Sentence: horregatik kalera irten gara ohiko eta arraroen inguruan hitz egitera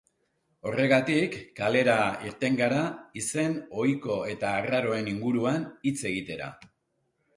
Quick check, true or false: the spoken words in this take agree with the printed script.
false